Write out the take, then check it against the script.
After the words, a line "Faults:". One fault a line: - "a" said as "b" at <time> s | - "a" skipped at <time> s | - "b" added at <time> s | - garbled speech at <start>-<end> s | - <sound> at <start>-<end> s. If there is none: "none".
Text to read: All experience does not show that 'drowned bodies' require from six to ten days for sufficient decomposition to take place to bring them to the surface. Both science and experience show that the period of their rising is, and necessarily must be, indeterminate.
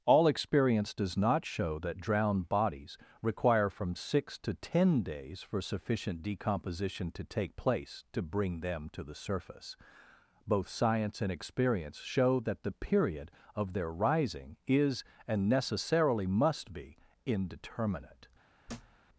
All experience does not show that 'drowned bodies' require from six to ten days for sufficient decomposition to take place to bring them to the surface. Both science and experience show that the period of their rising is, and necessarily must be, indeterminate.
Faults:
- thud at 18.7-19.0 s